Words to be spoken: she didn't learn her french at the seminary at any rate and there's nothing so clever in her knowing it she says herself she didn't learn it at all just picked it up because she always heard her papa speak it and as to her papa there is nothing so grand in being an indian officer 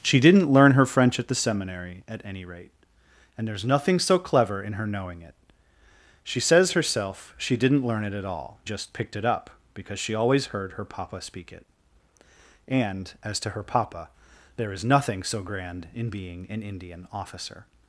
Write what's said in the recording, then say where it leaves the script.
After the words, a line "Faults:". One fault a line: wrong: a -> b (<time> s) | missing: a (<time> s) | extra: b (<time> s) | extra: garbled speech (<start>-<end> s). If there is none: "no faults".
she didn't learn her french at the seminary at any rate and there's nothing so clever in her knowing it she says herself she didn't learn it at all just picked it up because she always heard her papa speak it and as to her papa there is nothing so grand in being an indian officer
Faults:
no faults